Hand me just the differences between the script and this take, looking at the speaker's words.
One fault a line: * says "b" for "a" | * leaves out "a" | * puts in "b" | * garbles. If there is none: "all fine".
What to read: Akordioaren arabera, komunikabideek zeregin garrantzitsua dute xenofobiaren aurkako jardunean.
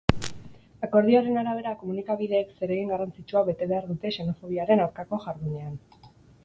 * puts in "bete behar"